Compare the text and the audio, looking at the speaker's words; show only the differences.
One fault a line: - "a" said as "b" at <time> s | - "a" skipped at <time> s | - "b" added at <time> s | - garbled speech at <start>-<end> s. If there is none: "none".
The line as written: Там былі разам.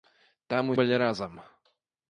none